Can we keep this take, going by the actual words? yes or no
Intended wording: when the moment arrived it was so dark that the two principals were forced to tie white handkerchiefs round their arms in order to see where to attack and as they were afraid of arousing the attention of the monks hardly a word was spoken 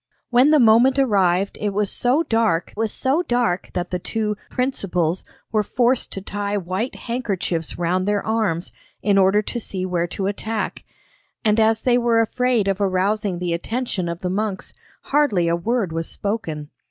no